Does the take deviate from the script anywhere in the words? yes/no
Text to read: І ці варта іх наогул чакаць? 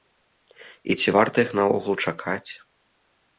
no